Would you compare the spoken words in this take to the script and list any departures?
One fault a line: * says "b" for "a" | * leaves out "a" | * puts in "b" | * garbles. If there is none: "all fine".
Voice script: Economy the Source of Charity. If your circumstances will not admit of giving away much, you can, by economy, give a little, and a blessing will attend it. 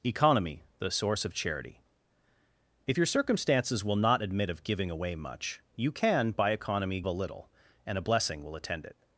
* leaves out "give"